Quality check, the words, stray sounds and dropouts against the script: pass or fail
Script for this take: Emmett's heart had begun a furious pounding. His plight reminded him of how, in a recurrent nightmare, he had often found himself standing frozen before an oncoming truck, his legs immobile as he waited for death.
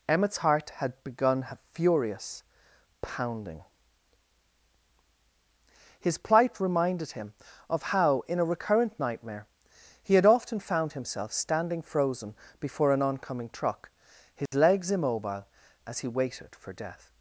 fail